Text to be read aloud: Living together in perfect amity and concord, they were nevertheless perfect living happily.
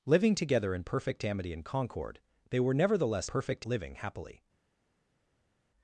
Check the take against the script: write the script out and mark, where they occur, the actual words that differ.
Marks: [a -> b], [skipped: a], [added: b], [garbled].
Living together in perfect amity and concord, they were nevertheless perfect living happily.